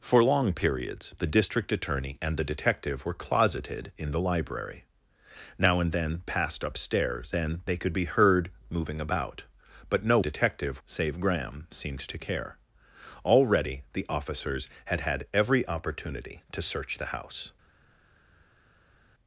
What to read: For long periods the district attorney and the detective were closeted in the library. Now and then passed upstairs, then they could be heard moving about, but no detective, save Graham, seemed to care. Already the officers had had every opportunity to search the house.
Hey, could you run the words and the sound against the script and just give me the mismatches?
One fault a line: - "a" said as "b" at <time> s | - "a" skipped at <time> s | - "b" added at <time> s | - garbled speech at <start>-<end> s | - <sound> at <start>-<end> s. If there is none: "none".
none